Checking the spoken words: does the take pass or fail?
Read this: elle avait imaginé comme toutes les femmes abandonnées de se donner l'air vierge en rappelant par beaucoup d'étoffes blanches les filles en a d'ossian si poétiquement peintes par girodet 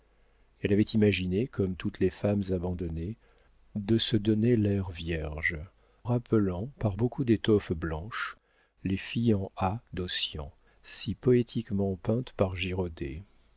fail